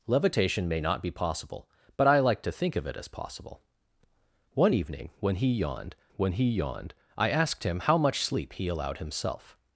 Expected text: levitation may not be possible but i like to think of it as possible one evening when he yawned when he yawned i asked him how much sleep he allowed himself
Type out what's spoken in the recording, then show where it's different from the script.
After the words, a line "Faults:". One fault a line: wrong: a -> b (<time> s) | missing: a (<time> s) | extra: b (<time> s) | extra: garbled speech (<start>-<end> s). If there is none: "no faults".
levitation may not be possible but i like to think of it as possible one evening when he yawned when he yawned i asked him how much sleep he allowed himself
Faults:
no faults